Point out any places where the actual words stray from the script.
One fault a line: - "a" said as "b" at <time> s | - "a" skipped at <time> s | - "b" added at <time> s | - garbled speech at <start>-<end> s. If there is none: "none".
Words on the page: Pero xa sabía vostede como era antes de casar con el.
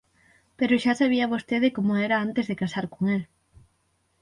none